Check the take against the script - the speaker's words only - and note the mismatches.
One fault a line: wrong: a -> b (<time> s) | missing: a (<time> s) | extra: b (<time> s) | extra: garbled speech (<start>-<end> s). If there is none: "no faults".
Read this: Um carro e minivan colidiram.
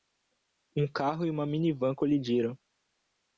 extra: uma (1.3 s)